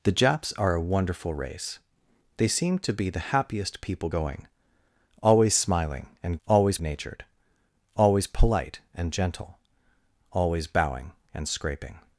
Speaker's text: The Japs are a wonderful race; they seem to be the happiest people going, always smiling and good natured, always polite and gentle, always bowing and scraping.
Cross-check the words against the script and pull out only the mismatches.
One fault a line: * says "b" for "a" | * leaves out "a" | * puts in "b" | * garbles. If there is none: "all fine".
* says "always" for "good"